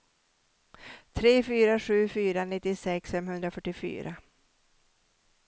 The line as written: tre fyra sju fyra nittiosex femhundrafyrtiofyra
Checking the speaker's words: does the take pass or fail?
pass